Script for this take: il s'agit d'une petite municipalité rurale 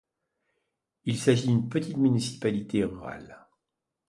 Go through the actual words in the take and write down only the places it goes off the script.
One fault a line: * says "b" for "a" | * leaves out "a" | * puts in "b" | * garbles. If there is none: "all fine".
all fine